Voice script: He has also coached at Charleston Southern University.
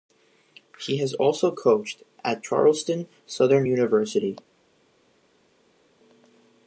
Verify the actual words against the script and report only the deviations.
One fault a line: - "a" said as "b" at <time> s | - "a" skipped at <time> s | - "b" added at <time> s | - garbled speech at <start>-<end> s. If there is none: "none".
none